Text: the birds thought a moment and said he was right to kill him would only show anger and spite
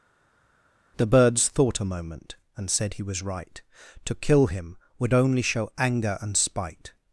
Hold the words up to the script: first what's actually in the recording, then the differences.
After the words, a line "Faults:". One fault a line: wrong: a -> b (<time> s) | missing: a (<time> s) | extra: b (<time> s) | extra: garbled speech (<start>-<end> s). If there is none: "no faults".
the birds thought a moment and said he was right to kill him would only show anger and spite
Faults:
no faults